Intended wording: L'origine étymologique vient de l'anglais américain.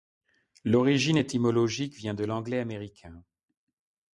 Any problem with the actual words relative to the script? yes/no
no